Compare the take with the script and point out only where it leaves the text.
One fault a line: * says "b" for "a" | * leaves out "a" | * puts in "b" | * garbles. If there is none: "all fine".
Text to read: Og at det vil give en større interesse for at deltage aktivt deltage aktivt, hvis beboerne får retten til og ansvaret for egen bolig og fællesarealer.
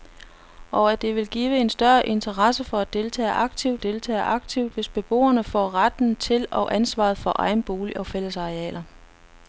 all fine